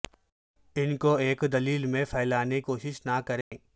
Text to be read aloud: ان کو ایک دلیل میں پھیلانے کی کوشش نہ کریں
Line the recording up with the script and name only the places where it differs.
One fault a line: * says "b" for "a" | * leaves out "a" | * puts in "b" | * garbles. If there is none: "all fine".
* leaves out "کی"